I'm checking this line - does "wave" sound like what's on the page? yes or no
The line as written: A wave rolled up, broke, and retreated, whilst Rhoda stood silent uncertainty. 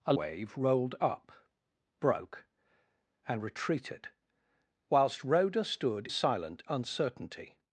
yes